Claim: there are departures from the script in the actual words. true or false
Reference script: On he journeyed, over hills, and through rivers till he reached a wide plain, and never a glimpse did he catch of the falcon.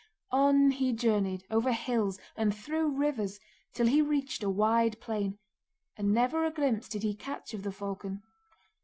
false